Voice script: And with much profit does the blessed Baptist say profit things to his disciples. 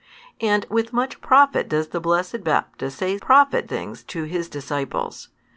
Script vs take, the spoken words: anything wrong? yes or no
no